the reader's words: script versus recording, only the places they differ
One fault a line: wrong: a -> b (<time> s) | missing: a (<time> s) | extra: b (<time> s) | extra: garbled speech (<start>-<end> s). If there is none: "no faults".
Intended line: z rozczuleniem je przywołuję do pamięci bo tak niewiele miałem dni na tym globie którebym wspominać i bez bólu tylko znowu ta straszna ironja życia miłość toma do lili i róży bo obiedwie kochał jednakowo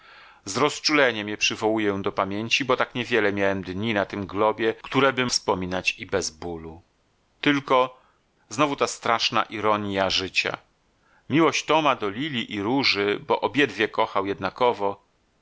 no faults